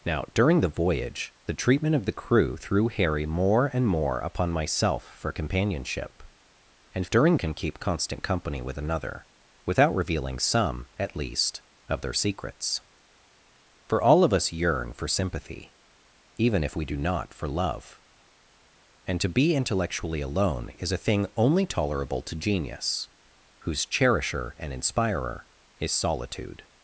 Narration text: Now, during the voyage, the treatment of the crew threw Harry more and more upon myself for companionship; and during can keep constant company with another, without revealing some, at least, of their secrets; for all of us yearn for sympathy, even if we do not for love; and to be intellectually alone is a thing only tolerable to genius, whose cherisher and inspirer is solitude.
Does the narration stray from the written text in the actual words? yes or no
no